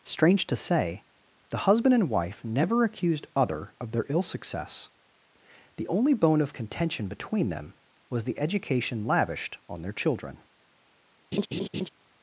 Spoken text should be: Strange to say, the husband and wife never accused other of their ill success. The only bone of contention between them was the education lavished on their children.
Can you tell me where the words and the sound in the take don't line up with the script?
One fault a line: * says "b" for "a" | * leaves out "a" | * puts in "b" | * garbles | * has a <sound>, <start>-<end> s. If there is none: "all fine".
* has a laugh, 11.3-11.9 s